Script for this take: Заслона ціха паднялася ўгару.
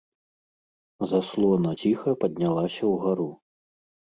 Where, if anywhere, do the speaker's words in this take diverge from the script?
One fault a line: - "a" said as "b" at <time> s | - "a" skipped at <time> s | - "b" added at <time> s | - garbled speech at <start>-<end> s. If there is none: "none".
none